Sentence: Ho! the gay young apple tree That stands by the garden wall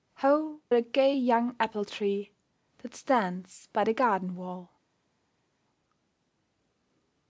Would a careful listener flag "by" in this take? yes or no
no